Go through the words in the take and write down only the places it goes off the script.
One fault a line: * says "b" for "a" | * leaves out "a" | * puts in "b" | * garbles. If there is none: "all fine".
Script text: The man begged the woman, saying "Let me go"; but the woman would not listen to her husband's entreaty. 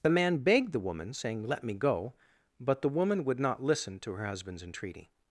all fine